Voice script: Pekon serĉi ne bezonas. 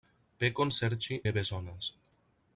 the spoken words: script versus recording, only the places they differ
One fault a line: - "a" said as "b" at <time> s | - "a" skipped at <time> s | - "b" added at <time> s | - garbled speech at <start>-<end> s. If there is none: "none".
none